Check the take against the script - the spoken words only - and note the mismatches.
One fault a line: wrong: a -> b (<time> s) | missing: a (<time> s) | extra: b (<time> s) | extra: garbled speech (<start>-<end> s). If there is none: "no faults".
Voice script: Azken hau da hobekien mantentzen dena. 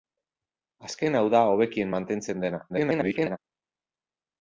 extra: garbled speech (2.7-3.4 s)